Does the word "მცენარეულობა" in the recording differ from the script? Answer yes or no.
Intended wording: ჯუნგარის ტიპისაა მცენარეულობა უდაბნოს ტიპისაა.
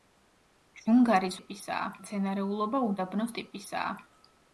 no